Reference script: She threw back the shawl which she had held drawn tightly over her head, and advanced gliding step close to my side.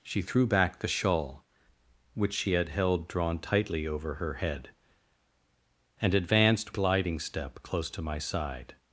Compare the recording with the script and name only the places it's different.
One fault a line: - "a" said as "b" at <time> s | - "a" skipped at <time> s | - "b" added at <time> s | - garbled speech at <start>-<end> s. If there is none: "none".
none